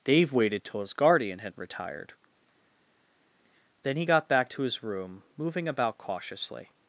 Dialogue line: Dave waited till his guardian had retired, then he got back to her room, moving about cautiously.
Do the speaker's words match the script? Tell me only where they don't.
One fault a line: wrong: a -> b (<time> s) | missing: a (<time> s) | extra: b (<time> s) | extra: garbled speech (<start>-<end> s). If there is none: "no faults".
wrong: her -> his (4.6 s)